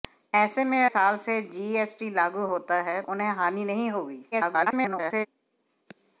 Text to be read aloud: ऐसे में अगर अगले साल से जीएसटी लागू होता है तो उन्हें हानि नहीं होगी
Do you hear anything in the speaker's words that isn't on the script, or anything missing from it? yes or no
yes